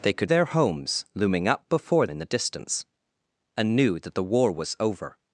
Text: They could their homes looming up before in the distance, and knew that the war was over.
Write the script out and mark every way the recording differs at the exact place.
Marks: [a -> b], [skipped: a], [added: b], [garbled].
They could their homes looming up before in the distance, and knew that the war was over.